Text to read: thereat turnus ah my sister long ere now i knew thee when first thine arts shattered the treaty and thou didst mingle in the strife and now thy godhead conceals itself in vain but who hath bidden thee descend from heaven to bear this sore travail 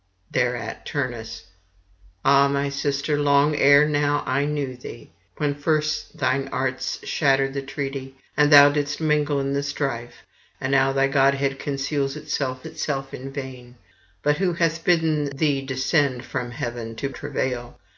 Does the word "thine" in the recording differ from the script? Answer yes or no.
no